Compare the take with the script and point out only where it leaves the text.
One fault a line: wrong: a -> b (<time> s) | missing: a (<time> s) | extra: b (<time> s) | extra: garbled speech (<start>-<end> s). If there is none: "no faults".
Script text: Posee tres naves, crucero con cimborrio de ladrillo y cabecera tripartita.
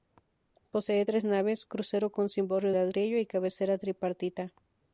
missing: de (2.7 s)